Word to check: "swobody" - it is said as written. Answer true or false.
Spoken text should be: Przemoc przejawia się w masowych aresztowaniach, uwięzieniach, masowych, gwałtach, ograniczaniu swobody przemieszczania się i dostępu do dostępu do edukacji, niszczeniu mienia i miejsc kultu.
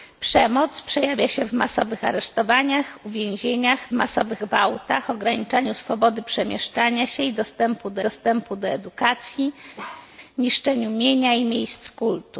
true